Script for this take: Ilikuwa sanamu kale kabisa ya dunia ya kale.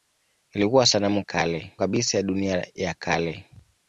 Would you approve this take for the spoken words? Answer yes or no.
yes